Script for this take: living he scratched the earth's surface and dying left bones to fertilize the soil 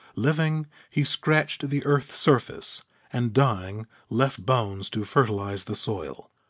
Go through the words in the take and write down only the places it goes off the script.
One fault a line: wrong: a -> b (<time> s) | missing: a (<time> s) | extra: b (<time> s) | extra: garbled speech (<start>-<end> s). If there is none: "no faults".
no faults